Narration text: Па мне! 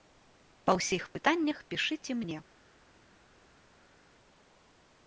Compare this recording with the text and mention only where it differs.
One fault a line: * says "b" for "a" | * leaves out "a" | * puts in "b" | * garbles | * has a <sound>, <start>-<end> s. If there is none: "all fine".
* puts in "ўсіх пытаннях пішыце"